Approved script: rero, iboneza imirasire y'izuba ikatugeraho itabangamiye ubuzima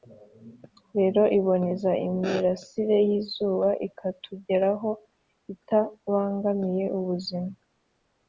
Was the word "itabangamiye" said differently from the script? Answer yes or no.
no